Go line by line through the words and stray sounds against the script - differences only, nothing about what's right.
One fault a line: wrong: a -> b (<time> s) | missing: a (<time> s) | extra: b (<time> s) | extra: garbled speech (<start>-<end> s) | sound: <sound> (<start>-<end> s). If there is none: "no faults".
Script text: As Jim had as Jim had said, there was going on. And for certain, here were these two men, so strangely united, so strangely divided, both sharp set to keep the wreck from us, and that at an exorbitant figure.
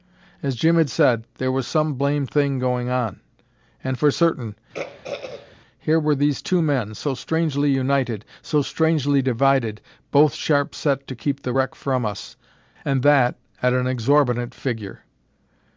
wrong: as Jim had said there was -> said there was some blamed thing (0.9 s)
sound: throat clearing (4.7-5.6 s)